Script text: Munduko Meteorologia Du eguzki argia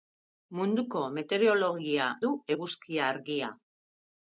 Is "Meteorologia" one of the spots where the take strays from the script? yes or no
no